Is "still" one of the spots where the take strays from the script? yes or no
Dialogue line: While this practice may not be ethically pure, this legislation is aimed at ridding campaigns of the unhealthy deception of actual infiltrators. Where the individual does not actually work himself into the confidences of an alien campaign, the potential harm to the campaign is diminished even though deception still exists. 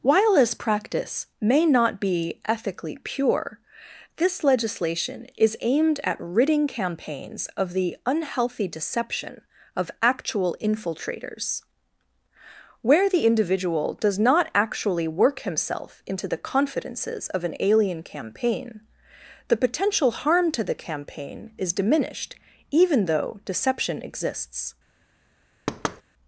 yes